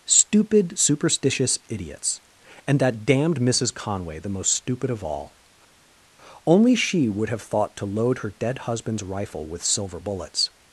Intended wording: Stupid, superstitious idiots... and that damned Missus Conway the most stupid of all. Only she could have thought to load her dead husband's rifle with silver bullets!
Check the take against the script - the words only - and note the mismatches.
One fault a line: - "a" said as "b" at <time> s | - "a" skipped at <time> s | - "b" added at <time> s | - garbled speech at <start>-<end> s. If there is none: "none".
- "could" said as "would" at 7.1 s